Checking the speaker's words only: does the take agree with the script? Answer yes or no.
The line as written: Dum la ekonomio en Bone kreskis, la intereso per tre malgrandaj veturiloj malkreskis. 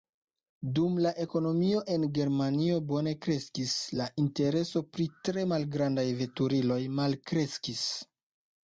no